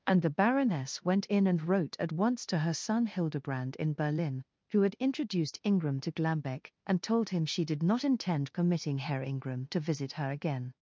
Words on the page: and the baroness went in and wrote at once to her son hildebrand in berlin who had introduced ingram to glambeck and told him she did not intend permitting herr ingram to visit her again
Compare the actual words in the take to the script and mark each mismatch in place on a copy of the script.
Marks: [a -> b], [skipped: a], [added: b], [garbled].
and the baroness went in and wrote at once to her son hildebrand in berlin who had introduced ingram to glambeck and told him she did not intend permitting herr ingram to visit her again